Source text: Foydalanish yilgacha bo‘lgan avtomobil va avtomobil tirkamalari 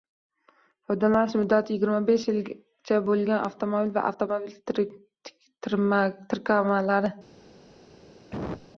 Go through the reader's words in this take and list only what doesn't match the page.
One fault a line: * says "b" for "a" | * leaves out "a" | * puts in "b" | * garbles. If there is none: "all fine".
* puts in "muddati yigirma besh"